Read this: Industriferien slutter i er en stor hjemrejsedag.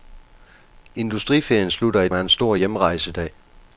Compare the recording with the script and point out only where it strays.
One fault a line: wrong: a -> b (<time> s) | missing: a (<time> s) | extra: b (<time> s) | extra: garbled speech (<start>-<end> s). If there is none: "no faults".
no faults